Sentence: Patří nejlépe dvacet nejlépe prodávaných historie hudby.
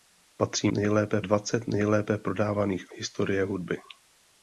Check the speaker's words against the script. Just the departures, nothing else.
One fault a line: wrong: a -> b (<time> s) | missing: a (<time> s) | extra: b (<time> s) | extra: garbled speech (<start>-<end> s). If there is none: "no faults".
no faults